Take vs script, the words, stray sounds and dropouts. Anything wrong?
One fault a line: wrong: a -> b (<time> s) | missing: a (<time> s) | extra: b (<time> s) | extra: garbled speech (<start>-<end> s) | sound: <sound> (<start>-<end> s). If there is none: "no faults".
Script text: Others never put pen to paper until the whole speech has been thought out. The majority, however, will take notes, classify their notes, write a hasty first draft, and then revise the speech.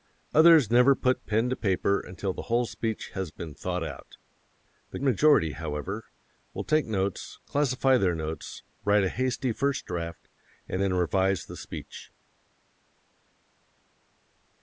no faults